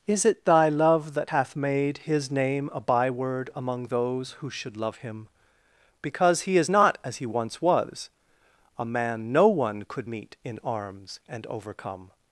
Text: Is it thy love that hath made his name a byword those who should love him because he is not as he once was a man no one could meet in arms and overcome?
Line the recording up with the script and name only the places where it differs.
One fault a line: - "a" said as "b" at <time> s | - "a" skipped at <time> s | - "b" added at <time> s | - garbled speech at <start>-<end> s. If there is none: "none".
- "among" added at 3.5 s